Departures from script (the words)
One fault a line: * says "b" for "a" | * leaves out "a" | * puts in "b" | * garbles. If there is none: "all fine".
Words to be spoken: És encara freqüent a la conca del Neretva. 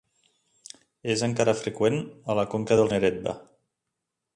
all fine